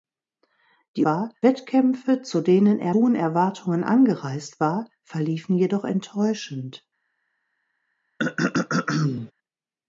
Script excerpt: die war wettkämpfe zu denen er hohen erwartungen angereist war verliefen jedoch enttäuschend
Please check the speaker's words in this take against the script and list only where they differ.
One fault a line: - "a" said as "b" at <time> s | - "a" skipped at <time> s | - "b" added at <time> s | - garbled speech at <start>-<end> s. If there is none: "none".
none